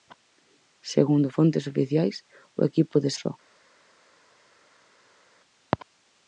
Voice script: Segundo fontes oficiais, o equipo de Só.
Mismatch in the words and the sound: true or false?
false